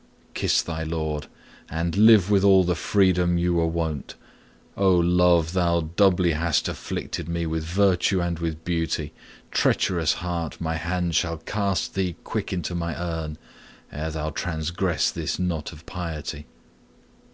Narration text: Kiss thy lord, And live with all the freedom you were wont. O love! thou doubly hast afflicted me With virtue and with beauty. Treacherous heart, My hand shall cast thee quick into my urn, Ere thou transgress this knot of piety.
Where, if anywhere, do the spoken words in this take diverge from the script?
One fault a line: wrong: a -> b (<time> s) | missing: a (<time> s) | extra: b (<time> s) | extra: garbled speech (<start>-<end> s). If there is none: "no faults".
no faults